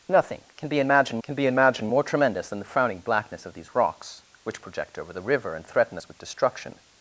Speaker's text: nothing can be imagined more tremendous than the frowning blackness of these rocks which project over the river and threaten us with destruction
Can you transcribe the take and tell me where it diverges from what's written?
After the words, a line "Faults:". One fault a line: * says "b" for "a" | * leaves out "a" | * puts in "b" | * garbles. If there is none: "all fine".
nothing can be imagined can be imagined more tremendous than the frowning blackness of these rocks which project over the river and threaten us with destruction
Faults:
* puts in "can be imagined"